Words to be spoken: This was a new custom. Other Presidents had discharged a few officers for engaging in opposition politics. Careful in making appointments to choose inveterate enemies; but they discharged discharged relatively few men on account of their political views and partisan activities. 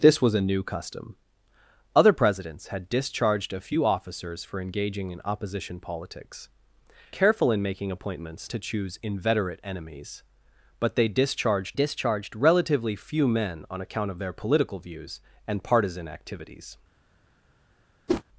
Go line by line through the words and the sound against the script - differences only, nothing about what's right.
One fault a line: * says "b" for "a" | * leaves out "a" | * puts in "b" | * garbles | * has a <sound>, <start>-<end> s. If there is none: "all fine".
* has a whoosh, 18.1-18.2 s